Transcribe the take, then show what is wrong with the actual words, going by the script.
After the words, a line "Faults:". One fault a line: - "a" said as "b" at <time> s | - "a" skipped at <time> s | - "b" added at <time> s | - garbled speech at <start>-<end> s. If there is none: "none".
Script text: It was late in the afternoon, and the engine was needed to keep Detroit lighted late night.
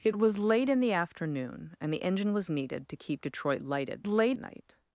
It was late in the afternoon, and the engine was needed to keep Detroit lighted late night.
Faults:
none